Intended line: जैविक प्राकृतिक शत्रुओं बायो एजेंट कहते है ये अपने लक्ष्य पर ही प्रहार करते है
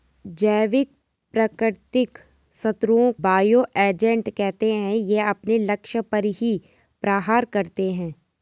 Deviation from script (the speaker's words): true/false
false